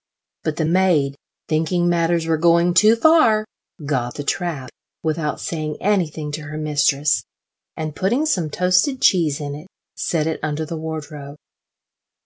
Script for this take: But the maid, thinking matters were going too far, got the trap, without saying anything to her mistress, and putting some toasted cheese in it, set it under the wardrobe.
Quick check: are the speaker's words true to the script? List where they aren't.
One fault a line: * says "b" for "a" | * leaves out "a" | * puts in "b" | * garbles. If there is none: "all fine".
all fine